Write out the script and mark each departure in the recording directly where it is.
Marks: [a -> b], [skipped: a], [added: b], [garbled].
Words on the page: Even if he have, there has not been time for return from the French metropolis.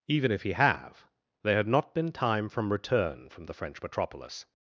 Even if he have, there [has -> had] not been time [for -> from] return from the French metropolis.